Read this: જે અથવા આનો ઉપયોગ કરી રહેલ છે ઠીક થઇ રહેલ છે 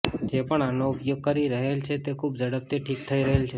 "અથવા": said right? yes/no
no